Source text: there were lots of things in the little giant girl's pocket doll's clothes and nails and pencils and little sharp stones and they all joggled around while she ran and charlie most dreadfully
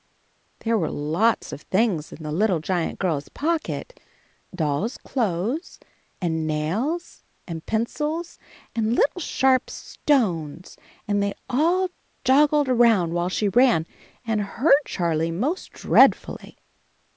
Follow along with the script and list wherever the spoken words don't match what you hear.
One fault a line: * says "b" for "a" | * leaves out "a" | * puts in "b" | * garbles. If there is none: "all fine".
* puts in "hurt"